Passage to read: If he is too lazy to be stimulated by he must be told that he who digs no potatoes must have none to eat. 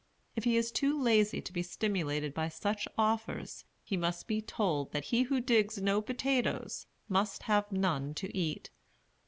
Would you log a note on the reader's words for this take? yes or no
yes